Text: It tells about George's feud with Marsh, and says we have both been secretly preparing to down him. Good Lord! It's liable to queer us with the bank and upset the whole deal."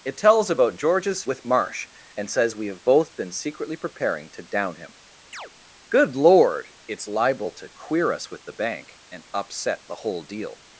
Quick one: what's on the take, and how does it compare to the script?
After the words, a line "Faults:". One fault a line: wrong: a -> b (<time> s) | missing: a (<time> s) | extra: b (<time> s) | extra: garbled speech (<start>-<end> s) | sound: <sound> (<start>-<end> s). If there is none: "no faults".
It tells about George's with Marsh, and says we have both been secretly preparing to down him. Good Lord! It's liable to queer us with the bank and upset the whole deal."
Faults:
missing: feud (1.2 s)
sound: chirp (5.3-5.5 s)